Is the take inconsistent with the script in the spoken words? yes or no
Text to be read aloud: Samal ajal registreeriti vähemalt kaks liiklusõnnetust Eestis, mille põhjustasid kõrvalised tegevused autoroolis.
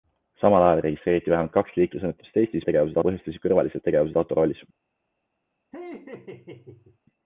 yes